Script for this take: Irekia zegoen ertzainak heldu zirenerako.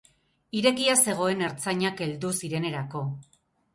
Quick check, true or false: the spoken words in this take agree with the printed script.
true